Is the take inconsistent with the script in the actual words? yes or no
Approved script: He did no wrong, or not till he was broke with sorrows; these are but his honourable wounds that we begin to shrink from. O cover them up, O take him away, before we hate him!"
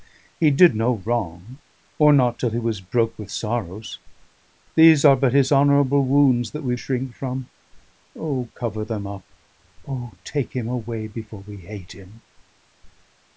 yes